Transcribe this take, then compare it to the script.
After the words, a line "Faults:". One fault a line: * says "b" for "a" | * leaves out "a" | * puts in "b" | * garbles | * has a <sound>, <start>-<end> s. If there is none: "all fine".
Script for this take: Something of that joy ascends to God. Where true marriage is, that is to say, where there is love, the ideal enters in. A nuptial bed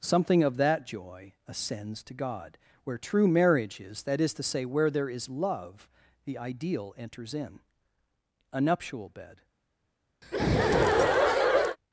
Something of that joy ascends to God. Where true marriage is, that is to say, where there is love, the ideal enters in. A nuptial bed
Faults:
* has a laugh, 10.2-11.8 s